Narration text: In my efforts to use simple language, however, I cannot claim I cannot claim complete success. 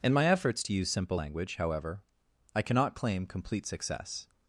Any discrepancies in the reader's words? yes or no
yes